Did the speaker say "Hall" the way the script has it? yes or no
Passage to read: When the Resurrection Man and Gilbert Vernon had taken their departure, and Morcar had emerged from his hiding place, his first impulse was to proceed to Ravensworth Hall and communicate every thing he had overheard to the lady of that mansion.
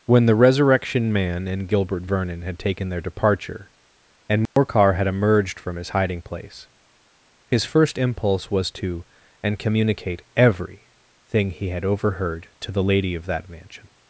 no